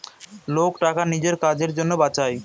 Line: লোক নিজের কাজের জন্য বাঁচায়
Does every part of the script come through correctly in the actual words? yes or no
no